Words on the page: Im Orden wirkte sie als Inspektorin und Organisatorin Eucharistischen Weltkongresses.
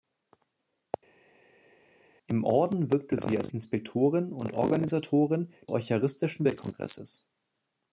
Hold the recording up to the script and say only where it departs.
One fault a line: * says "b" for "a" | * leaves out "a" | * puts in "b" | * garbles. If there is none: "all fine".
all fine